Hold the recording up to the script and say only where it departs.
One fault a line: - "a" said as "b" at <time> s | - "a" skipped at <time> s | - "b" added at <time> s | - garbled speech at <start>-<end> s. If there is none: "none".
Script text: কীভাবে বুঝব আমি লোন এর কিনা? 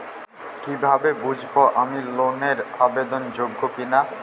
- "আবেদন যোগ্য" added at 2.8 s